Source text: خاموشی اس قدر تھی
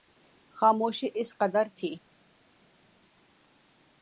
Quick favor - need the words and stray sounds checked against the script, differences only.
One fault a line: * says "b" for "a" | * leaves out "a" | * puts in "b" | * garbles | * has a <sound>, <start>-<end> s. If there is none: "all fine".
all fine